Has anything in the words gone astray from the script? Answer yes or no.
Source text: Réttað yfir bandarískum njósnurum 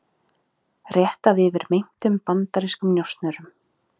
yes